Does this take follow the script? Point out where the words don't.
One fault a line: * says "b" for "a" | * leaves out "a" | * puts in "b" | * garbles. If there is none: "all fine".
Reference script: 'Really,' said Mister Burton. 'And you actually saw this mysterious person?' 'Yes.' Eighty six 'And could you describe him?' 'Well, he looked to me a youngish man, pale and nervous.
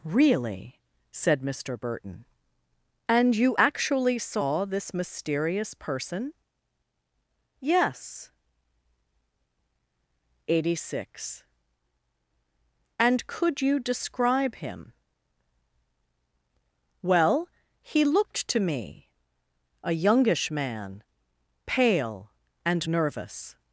all fine